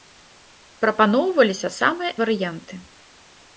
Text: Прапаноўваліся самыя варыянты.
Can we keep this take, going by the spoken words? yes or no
yes